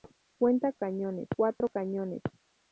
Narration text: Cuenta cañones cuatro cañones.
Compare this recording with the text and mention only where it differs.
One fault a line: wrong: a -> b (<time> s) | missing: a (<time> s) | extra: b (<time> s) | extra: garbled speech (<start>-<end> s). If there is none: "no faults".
no faults